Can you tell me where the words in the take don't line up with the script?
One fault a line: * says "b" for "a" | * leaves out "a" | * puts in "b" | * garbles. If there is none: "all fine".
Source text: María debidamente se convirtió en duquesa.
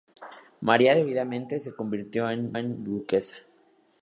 * puts in "en"